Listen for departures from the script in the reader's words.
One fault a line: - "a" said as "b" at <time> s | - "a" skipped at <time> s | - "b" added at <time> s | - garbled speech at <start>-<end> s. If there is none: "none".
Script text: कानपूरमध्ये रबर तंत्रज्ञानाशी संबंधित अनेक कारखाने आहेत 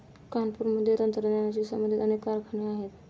- "रबर" skipped at 0.9 s